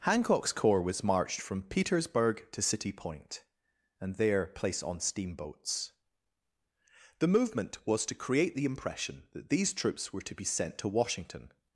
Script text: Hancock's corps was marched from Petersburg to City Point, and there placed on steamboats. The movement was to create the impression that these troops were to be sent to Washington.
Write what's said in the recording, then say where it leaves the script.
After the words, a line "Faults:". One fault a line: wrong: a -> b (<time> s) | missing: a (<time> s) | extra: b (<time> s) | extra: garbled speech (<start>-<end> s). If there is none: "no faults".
Hancock's corps was marched from Petersburg to City Point, and there placed on steamboats. The movement was to create the impression that these troops were to be sent to Washington.
Faults:
no faults